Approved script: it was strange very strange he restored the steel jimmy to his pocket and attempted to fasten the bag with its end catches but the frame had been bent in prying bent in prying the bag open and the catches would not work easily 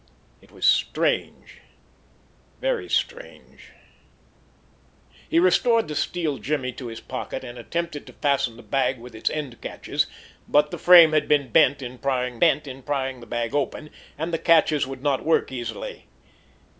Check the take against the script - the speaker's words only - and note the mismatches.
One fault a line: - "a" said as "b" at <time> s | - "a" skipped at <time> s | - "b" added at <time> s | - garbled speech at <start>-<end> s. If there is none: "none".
none